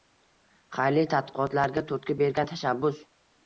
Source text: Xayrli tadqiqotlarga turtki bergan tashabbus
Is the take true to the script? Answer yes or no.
yes